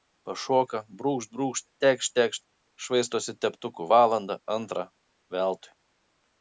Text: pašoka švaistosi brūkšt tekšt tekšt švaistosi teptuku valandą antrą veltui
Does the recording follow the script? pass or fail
fail